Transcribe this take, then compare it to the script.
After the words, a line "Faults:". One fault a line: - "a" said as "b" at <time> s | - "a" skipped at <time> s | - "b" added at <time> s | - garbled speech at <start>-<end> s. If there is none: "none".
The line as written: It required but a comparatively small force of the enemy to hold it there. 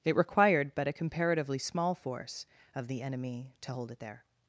It required but a comparatively small force of the enemy to hold it there.
Faults:
none